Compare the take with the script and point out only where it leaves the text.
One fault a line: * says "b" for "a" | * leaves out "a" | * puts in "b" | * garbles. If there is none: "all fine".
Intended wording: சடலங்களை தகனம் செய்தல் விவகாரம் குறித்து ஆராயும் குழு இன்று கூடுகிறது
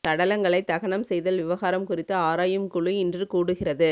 all fine